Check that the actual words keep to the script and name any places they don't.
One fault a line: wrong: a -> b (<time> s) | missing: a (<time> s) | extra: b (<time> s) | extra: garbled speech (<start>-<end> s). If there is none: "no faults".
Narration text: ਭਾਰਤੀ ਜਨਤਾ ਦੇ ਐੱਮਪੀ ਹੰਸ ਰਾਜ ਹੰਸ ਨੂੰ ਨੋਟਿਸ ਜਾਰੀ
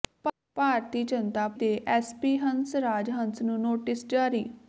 no faults